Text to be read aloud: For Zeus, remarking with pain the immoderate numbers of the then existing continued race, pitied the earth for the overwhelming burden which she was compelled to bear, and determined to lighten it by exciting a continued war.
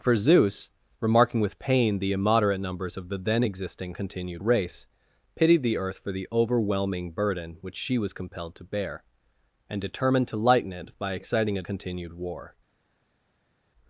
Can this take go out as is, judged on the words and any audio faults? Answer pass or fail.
pass